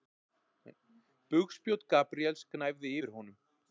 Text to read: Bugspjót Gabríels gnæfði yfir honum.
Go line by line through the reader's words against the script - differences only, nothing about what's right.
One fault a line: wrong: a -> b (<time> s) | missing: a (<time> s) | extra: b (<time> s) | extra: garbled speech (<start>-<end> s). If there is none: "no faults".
no faults